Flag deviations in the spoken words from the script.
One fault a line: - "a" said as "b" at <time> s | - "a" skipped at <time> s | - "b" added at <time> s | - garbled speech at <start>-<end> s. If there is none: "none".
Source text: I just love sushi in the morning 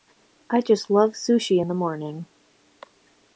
none